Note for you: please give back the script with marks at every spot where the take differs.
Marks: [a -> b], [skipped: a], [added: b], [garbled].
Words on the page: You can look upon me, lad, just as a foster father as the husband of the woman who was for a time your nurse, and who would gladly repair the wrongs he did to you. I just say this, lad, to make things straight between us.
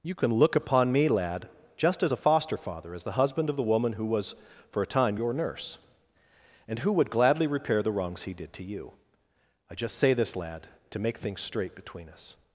You can look upon me, lad, just as a foster father as the husband of the woman who was for a time your nurse, and who would gladly repair the wrongs he did to you. I just say this, lad, to make things straight between us.